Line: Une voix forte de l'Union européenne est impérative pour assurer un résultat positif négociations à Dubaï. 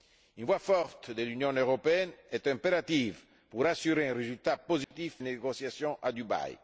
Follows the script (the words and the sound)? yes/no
no